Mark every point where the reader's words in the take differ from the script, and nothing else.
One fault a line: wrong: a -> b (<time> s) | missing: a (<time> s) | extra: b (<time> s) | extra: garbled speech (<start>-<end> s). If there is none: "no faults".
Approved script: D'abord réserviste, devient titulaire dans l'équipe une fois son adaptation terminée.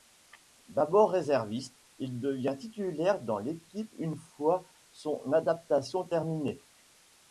extra: il (2.0 s)